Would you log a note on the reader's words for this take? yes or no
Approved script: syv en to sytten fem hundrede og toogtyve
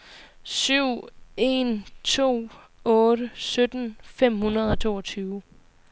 yes